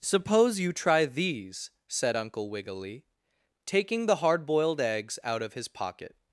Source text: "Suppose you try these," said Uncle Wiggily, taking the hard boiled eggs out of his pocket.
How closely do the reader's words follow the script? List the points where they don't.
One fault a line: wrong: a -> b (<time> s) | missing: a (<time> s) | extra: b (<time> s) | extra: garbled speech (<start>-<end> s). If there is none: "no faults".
no faults